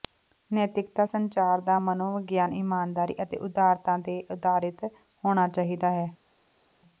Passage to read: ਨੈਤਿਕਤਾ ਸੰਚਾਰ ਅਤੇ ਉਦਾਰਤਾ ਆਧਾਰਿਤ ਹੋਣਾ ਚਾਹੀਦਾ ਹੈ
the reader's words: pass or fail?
fail